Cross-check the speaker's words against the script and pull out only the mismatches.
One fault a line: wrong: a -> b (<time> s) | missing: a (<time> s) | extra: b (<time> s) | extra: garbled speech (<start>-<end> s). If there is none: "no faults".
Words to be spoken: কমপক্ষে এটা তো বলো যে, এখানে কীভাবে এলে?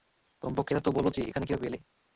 no faults